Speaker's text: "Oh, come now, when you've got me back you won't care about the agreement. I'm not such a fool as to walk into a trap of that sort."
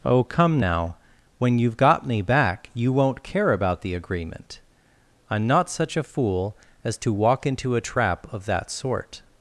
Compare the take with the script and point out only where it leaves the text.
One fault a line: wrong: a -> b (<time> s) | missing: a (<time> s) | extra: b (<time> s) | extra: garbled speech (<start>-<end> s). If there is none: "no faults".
no faults